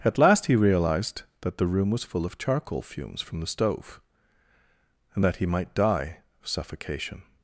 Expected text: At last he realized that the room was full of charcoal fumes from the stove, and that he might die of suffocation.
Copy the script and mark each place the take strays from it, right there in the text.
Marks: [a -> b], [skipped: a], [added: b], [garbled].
At last he realized that the room was full of charcoal fumes from the stove, and that he might die of suffocation.